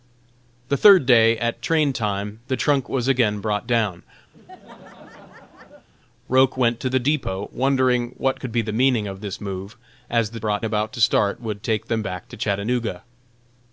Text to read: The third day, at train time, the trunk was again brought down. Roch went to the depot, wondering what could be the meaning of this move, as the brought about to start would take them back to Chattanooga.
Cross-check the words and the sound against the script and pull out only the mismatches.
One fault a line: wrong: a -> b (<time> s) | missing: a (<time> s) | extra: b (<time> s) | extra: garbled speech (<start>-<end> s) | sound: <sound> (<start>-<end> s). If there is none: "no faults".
sound: laugh (4.3-5.9 s)